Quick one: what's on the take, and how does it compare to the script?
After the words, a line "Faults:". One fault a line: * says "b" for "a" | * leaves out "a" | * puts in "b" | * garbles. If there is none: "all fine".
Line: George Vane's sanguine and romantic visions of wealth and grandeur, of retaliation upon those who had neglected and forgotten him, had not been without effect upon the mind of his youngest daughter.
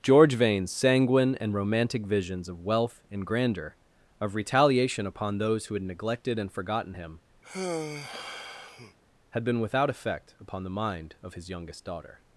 George Vane's sanguine and romantic visions of wealth and grandeur, of retaliation upon those who had neglected and forgotten him, had been without effect upon the mind of his youngest daughter.
Faults:
* leaves out "not"